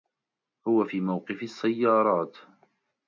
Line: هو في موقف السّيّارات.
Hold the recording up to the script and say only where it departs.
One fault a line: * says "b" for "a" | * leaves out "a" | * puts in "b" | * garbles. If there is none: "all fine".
all fine